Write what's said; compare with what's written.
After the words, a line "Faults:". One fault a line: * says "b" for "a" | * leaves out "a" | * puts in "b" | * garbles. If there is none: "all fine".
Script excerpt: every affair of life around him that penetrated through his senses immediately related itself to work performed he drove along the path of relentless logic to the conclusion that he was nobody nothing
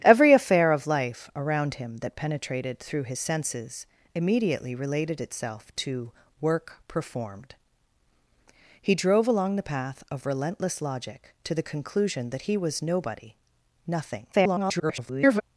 every affair of life around him that penetrated through his senses immediately related itself to work performed he drove along the path of relentless logic to the conclusion that he was nobody nothing [garbled]
Faults:
* garbles